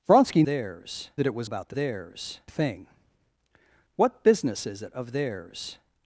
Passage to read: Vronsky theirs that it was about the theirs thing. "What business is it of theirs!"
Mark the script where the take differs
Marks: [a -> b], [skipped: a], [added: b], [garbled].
Vronsky theirs that it was about the theirs thing. "What business is it of theirs!"